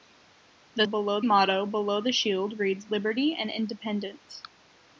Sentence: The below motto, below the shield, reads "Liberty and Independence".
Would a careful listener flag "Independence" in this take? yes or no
no